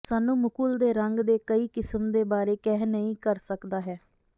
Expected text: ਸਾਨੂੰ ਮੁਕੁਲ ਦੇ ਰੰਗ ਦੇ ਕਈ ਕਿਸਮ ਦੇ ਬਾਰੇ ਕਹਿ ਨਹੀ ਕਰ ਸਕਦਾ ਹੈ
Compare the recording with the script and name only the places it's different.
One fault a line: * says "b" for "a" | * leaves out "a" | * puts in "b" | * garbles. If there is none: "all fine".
all fine